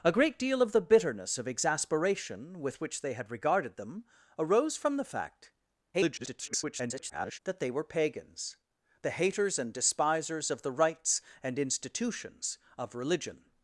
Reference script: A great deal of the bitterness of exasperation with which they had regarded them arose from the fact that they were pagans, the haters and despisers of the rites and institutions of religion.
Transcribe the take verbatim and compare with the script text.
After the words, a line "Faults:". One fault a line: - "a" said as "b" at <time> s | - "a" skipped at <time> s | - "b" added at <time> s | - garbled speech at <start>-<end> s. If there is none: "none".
A great deal of the bitterness of exasperation with which they had regarded them arose from the fact [garbled] that they were pagans, the haters and despisers of the rites and institutions of religion.
Faults:
- garbled speech at 5.9-7.4 s